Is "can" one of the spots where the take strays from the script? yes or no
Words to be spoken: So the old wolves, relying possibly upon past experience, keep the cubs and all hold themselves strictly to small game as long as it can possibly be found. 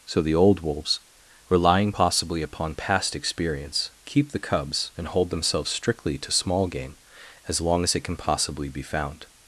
no